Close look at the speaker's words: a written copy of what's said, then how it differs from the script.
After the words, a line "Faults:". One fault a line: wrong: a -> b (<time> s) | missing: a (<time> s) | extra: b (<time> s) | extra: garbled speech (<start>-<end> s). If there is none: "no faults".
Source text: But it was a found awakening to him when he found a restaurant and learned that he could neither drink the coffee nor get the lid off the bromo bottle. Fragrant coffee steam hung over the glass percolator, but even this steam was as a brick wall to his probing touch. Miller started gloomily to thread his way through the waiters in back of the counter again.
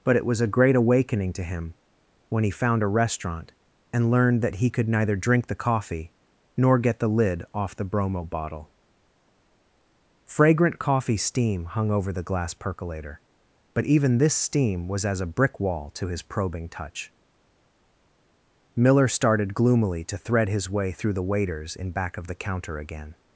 But it was a great awakening to him when he found a restaurant and learned that he could neither drink the coffee nor get the lid off the bromo bottle. Fragrant coffee steam hung over the glass percolator, but even this steam was as a brick wall to his probing touch. Miller started gloomily to thread his way through the waiters in back of the counter again.
Faults:
wrong: found -> great (0.5 s)